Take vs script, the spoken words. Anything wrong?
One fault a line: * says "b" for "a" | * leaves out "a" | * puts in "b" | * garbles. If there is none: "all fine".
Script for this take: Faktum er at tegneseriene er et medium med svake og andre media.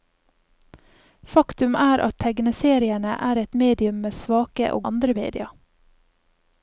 all fine